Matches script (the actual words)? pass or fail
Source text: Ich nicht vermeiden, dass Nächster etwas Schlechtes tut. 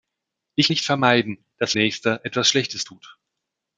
pass